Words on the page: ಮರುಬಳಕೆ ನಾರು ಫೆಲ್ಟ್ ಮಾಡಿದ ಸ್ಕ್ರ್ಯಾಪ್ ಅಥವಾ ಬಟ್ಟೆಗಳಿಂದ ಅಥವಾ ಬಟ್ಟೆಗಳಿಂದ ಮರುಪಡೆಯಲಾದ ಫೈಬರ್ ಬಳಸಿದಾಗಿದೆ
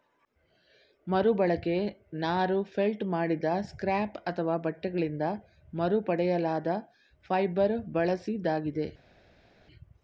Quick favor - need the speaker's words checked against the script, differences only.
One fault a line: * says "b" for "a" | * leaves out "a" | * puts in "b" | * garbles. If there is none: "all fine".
* leaves out "ಅಥವಾ ಬಟ್ಟೆಗಳಿಂದ"